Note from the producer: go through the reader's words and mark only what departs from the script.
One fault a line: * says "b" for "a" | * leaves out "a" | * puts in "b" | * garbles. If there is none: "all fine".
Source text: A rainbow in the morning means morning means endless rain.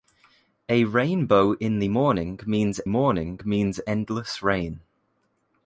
all fine